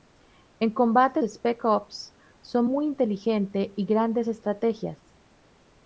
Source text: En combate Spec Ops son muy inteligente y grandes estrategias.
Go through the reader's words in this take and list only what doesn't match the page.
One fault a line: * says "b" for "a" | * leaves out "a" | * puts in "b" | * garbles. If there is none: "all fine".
all fine